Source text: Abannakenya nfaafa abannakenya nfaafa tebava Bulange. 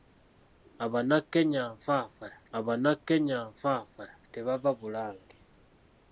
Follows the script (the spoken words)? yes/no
yes